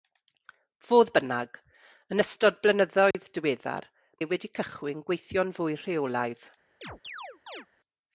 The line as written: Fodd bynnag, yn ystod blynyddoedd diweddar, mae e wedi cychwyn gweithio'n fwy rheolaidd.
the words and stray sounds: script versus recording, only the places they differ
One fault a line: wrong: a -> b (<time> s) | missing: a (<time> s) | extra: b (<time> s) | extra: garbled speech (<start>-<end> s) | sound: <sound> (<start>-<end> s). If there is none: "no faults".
sound: dropout (3.1-3.1 s)
missing: mae (3.9 s)
sound: chirp (6.8-7.7 s)